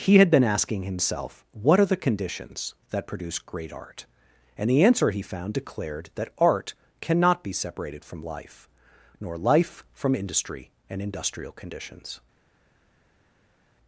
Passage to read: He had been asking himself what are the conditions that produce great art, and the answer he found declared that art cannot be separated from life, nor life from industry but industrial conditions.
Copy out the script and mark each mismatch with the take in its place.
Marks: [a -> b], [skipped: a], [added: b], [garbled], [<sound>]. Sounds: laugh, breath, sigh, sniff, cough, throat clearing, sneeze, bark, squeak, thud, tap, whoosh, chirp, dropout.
He had been asking himself what are the conditions that produce great art, and the answer he found declared that art cannot be separated from life, nor life from industry [but -> and] industrial conditions.